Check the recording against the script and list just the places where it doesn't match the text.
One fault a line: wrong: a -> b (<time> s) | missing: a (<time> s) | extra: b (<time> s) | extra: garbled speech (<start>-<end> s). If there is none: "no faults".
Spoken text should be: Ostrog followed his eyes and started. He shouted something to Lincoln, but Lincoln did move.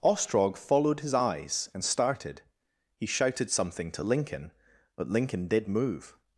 no faults